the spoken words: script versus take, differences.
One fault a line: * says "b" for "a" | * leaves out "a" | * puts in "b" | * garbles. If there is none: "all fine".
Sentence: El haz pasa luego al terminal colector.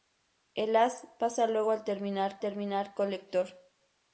* puts in "terminal"